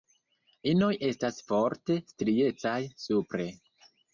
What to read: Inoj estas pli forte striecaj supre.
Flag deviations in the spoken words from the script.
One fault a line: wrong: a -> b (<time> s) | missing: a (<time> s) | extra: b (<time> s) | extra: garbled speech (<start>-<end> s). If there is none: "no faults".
missing: pli (1.4 s)